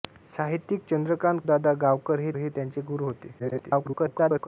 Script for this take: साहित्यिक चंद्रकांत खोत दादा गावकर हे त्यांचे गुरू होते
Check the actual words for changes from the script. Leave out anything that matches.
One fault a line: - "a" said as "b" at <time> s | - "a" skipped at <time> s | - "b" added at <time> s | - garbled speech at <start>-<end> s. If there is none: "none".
- "खोत" skipped at 1.4 s
- "हे" added at 2.4 s
- garbled speech at 3.4-4.5 s